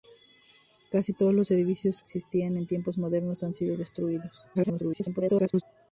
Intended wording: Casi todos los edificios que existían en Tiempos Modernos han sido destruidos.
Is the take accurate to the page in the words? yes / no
no